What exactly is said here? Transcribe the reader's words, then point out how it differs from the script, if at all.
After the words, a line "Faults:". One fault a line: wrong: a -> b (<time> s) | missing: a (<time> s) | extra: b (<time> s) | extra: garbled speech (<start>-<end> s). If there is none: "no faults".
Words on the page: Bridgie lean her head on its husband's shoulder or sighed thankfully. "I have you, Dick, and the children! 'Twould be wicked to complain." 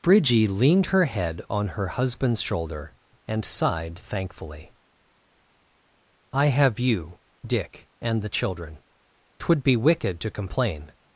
Bridgie leaned her head on her husband's shoulder and sighed thankfully. "I have you, Dick, and the children! 'Twould be wicked to complain."
Faults:
wrong: lean -> leaned (0.5 s)
wrong: its -> her (1.7 s)
wrong: or -> and (3.3 s)